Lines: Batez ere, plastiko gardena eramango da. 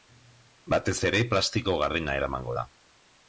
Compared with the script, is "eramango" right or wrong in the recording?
right